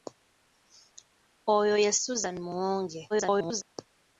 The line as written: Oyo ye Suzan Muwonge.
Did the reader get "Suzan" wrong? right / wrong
right